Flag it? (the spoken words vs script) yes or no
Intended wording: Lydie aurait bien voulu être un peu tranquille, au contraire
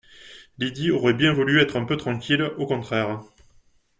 no